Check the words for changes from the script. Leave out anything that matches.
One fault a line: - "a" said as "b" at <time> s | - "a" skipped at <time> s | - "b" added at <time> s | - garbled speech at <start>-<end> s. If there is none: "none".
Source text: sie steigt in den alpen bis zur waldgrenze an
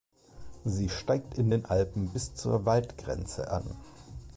none